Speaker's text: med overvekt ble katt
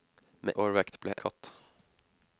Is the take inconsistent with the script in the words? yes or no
no